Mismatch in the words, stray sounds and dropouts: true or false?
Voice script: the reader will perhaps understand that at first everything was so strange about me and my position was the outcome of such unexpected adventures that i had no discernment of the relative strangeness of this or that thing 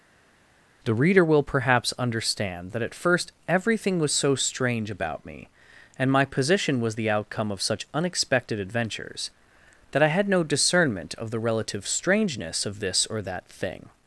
false